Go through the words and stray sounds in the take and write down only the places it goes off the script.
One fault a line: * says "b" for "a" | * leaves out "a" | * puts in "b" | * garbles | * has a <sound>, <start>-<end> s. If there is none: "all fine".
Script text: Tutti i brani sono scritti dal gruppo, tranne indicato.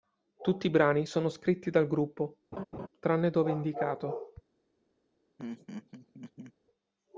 * has a laugh, 2.5-2.9 s
* puts in "dove"
* has a laugh, 5.4-6.5 s